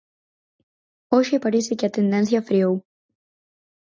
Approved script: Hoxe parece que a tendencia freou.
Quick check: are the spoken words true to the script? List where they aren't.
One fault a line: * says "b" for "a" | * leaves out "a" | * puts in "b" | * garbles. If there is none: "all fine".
all fine